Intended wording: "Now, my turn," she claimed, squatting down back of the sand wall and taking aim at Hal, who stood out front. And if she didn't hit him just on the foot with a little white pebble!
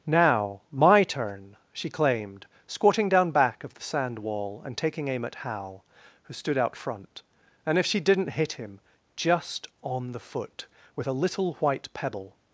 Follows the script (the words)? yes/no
yes